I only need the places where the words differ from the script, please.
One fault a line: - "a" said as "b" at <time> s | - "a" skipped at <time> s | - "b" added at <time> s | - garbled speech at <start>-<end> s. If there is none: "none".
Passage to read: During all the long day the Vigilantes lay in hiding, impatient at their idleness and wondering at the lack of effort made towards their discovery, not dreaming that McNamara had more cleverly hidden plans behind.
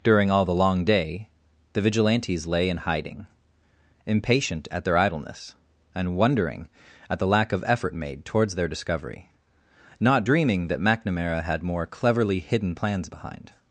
none